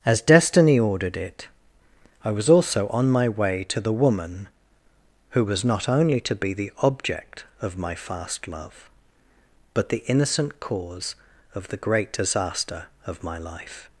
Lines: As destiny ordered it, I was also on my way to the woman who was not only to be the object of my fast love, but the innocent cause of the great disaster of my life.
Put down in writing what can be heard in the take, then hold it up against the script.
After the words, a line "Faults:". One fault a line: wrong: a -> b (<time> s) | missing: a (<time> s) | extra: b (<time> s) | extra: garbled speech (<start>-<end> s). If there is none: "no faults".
As destiny ordered it, I was also on my way to the woman who was not only to be the object of my fast love, but the innocent cause of the great disaster of my life.
Faults:
no faults